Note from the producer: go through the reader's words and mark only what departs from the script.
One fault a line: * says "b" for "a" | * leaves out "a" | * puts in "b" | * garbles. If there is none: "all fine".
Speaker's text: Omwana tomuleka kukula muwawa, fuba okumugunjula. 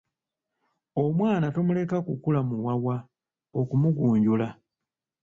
* leaves out "fuba"